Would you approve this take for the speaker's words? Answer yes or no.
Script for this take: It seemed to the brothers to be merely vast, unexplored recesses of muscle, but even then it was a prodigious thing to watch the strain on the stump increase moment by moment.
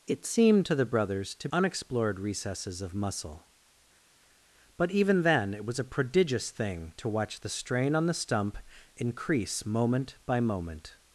no